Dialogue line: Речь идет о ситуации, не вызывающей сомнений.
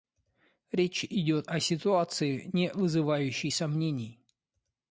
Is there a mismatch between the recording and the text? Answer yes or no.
no